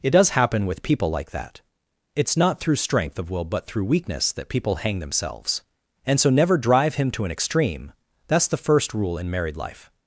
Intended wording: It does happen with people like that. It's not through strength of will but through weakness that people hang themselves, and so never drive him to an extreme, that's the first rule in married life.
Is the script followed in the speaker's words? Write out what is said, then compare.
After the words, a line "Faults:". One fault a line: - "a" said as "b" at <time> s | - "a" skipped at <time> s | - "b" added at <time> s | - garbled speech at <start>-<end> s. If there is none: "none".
It does happen with people like that. It's not through strength of will but through weakness that people hang themselves, and so never drive him to an extreme, that's the first rule in married life.
Faults:
none